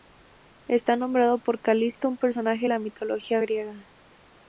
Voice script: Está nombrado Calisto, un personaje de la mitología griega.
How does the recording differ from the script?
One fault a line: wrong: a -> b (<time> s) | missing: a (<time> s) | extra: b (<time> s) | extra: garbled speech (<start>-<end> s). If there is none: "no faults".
extra: por (1.4 s)